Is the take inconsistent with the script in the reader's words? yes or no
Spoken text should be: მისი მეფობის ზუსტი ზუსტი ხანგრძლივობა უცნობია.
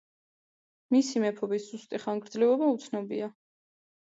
yes